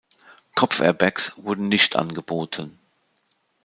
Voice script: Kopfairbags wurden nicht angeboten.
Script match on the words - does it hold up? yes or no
yes